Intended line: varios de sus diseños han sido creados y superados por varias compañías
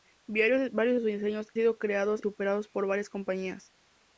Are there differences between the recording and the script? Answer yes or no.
yes